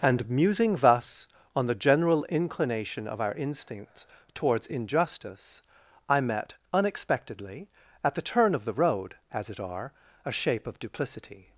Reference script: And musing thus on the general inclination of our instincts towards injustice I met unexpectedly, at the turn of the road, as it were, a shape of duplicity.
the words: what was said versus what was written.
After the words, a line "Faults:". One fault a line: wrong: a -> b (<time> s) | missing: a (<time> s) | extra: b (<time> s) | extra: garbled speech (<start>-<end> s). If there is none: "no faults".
And musing thus on the general inclination of our instincts towards injustice I met unexpectedly, at the turn of the road, as it are, a shape of duplicity.
Faults:
wrong: were -> are (9.6 s)